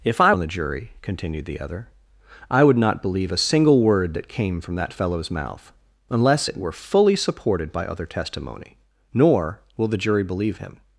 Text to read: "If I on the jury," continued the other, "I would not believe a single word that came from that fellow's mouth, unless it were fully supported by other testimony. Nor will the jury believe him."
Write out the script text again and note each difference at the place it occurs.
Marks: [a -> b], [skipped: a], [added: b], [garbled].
"If I on the jury," continued the other, "I would not believe a single word that came from that fellow's mouth, unless it were fully supported by other testimony. Nor will the jury believe him."